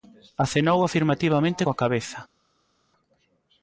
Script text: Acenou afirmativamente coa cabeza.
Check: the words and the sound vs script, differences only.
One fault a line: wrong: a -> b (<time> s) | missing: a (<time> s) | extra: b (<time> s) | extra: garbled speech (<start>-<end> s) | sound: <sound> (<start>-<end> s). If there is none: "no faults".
no faults